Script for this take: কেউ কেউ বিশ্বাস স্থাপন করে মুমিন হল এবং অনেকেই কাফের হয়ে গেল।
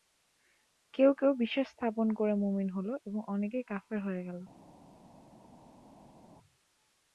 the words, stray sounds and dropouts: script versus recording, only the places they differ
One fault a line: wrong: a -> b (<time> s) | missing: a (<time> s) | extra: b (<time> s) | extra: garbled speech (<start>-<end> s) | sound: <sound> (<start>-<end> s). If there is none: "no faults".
no faults